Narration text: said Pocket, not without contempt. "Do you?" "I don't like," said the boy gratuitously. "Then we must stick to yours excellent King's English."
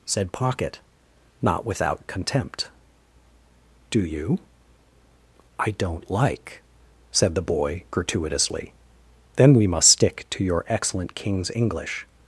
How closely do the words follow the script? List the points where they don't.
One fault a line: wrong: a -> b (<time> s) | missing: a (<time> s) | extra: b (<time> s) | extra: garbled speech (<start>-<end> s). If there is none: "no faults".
wrong: yours -> your (10.4 s)